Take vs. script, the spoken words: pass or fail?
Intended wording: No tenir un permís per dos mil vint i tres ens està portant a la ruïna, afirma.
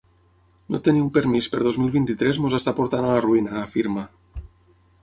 pass